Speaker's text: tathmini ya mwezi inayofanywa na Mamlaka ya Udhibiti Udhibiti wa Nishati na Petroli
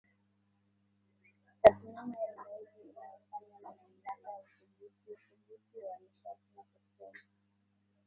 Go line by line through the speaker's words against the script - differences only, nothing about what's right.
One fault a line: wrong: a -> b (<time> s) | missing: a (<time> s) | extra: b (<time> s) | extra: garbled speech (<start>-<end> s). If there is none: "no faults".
no faults